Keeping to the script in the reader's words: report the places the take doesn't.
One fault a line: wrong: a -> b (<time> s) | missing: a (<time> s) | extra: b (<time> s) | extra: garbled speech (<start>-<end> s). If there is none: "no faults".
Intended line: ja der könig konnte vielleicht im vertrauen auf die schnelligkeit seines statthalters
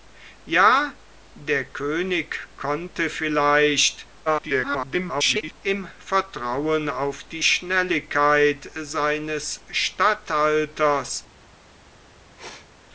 extra: garbled speech (4.3-5.6 s)